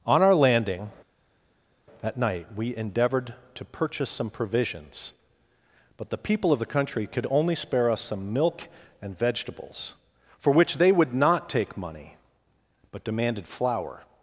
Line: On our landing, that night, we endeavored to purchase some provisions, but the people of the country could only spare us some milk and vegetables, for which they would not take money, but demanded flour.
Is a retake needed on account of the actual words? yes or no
no